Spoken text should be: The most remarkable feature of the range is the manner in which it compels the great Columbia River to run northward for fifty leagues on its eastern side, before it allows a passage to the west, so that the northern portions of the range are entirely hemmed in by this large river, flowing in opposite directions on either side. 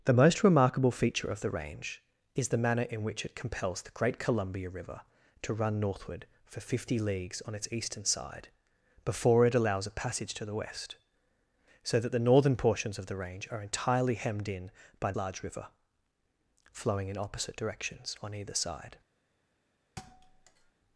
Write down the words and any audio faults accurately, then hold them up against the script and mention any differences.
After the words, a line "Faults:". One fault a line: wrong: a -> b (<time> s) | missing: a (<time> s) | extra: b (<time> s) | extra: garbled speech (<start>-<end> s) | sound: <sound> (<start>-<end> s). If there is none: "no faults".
The most remarkable feature of the range is the manner in which it compels the great Columbia River to run northward for fifty leagues on its eastern side, before it allows a passage to the west, so that the northern portions of the range are entirely hemmed in by large river, flowing in opposite directions on either side.
Faults:
missing: this (15.1 s)
sound: thud (20.0-20.7 s)